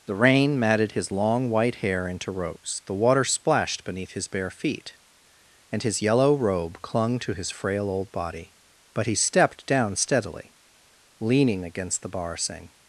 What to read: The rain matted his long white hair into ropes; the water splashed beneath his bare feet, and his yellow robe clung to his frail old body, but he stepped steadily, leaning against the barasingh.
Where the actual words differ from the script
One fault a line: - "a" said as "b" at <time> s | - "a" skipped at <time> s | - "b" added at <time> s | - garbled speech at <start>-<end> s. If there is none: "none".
- "down" added at 9.7 s